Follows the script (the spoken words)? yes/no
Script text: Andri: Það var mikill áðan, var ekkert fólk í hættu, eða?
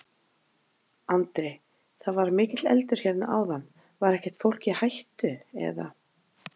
no